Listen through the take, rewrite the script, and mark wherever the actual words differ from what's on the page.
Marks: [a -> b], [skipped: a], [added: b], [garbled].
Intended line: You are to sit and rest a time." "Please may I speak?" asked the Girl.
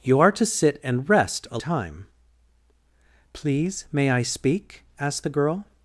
You are to sit and rest a time." "Please may I speak?" asked the Girl.